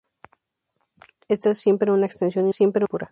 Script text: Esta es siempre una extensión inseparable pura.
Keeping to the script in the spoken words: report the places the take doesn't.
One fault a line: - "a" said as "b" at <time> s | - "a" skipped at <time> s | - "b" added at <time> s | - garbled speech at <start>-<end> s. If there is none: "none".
- "inseparable" said as "siempre" at 2.5 s